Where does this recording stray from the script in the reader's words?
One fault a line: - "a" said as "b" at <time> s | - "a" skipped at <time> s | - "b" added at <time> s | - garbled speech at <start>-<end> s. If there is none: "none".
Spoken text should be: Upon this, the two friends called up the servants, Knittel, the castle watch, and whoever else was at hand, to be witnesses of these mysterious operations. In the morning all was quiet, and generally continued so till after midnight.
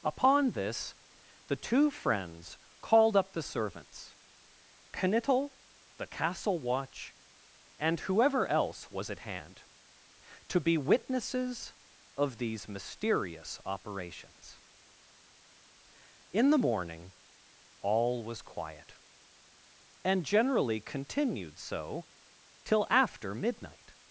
none